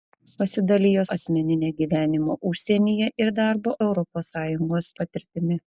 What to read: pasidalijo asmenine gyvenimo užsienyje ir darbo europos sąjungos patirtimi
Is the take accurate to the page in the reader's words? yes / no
yes